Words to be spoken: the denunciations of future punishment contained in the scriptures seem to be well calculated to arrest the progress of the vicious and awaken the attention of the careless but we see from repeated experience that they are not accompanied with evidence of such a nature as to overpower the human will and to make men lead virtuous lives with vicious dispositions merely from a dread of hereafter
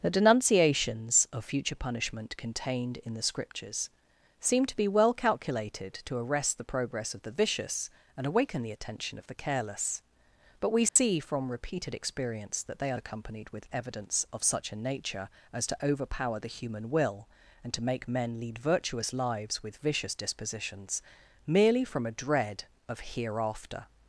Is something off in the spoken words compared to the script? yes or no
yes